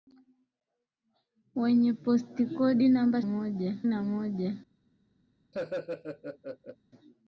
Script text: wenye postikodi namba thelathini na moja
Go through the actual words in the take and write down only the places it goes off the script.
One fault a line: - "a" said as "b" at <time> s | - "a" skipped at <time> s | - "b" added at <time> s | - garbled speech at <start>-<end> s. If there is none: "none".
- "thelathini" said as "moja" at 3.2 s